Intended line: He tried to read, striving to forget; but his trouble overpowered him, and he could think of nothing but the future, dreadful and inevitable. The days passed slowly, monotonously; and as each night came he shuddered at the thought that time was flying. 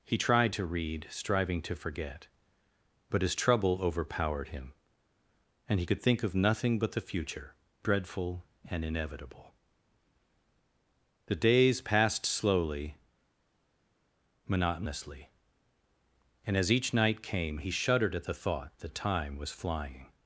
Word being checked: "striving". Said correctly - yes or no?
yes